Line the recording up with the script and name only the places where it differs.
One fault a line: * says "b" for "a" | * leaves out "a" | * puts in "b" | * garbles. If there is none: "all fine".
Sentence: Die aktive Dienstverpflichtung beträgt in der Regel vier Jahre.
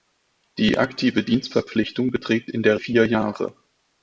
* leaves out "Regel"